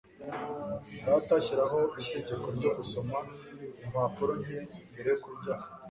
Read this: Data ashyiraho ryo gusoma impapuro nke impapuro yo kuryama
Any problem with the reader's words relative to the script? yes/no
yes